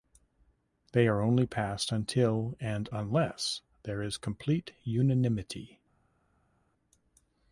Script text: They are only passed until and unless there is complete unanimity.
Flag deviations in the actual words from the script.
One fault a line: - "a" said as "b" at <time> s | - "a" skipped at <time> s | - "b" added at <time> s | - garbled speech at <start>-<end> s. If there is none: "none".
none